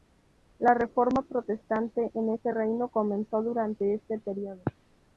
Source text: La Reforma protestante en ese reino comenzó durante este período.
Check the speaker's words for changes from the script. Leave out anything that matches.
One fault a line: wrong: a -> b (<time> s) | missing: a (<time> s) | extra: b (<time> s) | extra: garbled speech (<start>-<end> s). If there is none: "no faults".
no faults